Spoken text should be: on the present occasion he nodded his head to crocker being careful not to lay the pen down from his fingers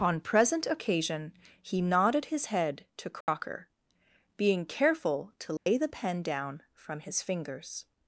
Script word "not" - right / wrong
wrong